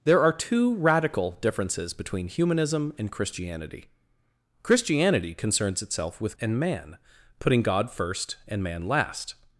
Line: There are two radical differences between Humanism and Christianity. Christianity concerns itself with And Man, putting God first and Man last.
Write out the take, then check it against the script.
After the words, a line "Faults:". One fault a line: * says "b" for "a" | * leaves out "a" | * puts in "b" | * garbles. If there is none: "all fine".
There are two radical differences between Humanism and Christianity. Christianity concerns itself with And Man, putting God first and Man last.
Faults:
all fine